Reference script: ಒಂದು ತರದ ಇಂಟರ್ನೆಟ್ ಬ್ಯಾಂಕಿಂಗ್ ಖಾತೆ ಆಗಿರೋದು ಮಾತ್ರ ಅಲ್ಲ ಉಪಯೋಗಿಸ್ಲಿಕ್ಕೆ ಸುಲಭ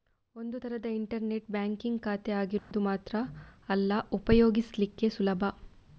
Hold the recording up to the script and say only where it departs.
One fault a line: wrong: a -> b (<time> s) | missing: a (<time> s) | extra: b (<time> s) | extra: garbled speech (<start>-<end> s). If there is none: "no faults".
no faults